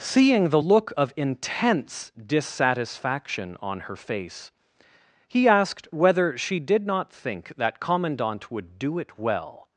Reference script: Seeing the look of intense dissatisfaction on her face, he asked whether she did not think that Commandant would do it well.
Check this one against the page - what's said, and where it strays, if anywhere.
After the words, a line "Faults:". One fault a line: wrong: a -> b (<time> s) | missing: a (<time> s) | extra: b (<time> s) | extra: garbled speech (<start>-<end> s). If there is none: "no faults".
Seeing the look of intense dissatisfaction on her face, he asked whether she did not think that Commandant would do it well.
Faults:
no faults